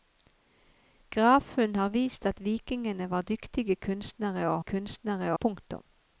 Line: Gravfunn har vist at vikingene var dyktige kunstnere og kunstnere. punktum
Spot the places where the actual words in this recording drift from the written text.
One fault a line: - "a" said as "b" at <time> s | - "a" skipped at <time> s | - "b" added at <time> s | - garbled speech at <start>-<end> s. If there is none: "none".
none